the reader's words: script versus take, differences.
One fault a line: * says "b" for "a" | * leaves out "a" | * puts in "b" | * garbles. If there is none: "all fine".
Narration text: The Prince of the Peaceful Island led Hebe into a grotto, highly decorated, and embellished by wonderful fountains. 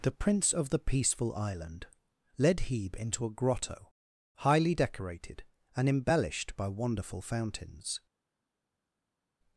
all fine